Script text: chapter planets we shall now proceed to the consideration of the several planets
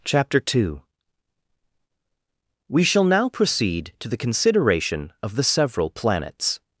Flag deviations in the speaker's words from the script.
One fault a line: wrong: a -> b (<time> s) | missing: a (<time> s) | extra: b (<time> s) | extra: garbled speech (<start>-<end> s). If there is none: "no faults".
wrong: planets -> two (0.4 s)